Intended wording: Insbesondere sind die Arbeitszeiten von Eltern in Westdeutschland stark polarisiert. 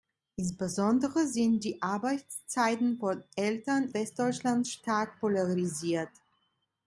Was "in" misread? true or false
true